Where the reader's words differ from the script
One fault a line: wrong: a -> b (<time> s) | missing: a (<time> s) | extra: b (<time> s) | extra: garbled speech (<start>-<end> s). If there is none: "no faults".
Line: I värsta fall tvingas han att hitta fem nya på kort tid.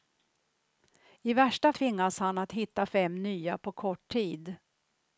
missing: fall (1.7 s)